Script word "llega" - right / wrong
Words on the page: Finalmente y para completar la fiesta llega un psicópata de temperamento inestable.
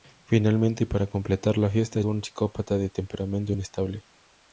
wrong